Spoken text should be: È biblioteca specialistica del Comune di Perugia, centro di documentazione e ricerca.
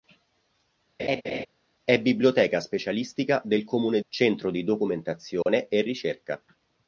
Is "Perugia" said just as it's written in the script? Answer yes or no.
no